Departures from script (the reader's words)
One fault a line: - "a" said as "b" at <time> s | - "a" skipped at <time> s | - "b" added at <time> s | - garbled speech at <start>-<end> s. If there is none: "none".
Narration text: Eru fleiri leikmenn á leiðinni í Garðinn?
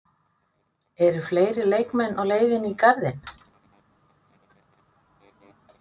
none